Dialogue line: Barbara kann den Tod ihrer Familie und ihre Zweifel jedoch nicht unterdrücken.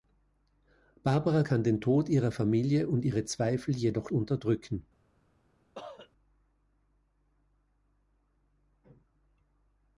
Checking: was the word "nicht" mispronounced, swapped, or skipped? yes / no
yes